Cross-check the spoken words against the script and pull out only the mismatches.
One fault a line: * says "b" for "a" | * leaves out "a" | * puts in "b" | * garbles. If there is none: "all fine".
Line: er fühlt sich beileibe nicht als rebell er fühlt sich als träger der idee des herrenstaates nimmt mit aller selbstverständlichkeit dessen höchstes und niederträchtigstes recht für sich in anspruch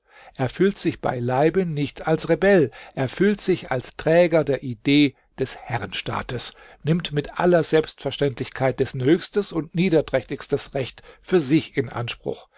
all fine